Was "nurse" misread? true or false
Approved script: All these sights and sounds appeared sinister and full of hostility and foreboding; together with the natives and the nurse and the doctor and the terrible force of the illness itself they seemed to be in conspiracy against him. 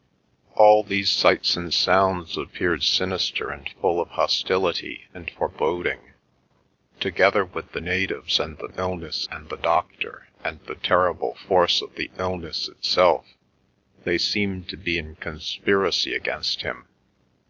true